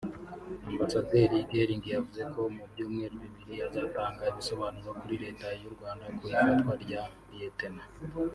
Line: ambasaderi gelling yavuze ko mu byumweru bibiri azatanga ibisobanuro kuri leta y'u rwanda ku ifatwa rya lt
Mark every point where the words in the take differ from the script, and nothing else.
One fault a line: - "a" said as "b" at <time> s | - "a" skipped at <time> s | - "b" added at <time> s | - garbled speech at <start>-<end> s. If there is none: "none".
none